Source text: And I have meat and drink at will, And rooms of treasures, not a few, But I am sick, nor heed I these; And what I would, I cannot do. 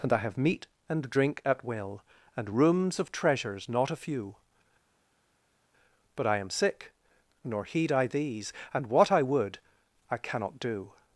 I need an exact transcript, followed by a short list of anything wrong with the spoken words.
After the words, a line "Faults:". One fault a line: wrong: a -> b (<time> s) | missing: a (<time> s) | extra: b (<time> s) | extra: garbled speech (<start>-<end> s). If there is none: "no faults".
And I have meat and drink at will, And rooms of treasures, not a few, But I am sick, nor heed I these; And what I would, I cannot do.
Faults:
no faults